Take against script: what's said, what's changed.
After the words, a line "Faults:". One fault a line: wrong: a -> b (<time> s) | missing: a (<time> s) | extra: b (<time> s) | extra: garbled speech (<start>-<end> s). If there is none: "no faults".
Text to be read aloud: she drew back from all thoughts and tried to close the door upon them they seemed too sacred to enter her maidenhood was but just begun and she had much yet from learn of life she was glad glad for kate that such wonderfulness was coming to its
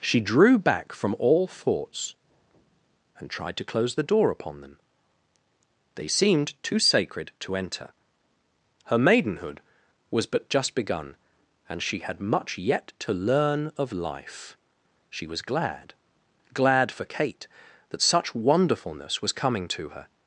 she drew back from all thoughts and tried to close the door upon them they seemed too sacred to enter her maidenhood was but just begun and she had much yet to learn of life she was glad glad for kate that such wonderfulness was coming to her
Faults:
wrong: from -> to (13.0 s)
wrong: its -> her (19.9 s)